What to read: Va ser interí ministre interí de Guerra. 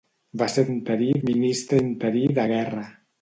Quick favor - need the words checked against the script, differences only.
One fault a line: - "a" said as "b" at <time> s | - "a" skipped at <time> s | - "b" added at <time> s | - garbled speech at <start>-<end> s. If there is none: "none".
none